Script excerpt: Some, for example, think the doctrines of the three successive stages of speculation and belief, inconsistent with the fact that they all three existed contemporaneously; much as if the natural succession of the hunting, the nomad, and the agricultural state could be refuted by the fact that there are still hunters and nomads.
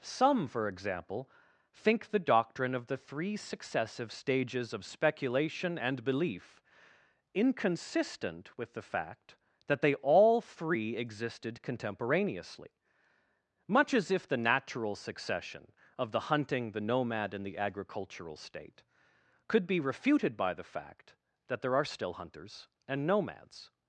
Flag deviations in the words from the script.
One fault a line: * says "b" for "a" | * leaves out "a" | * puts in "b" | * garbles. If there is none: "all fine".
* says "doctrine" for "doctrines"